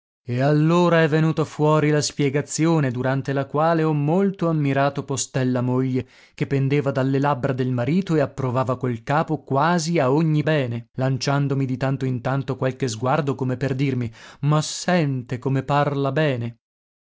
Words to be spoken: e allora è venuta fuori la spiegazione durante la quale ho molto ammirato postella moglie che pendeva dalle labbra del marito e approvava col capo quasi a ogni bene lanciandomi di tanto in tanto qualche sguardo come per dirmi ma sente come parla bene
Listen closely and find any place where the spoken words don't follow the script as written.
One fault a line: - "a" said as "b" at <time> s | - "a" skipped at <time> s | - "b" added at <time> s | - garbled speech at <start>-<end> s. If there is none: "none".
none